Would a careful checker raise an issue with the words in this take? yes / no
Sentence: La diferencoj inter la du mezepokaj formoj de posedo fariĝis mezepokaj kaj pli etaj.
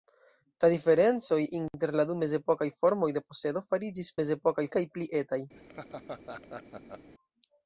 no